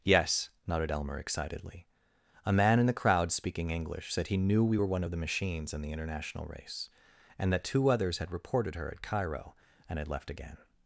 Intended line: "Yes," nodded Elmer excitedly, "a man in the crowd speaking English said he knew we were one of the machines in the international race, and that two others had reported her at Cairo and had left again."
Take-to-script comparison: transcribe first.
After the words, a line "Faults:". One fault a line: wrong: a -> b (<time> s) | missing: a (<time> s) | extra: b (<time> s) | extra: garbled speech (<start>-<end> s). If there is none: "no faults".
"Yes," nodded Elmer excitedly, "a man in the crowd speaking English said he knew we were one of the machines in the international race, and that two others had reported her at Cairo and had left again."
Faults:
no faults